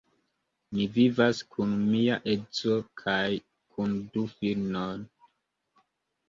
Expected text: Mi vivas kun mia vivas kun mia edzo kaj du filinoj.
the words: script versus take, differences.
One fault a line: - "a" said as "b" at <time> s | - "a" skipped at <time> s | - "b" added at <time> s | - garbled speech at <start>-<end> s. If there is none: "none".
- "vivas kun mia" skipped at 2.1 s
- "kun" added at 3.8 s